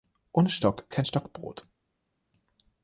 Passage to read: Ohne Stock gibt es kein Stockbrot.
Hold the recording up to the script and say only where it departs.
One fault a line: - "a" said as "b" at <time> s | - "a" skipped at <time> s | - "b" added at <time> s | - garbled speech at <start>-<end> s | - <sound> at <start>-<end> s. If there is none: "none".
- "gibt es" skipped at 0.9 s